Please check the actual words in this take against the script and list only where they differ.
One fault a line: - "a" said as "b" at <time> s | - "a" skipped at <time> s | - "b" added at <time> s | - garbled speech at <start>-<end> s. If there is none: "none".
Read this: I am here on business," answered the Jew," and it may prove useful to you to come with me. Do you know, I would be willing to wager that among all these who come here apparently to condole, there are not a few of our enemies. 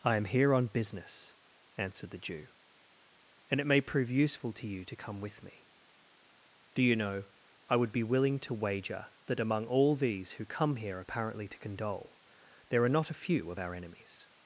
none